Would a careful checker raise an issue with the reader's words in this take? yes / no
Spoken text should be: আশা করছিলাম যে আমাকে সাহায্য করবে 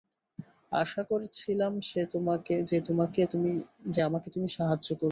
yes